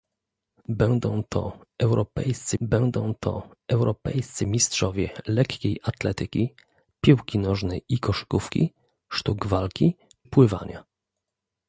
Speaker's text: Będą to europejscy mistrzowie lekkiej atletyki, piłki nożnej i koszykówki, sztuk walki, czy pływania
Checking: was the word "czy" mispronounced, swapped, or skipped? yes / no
yes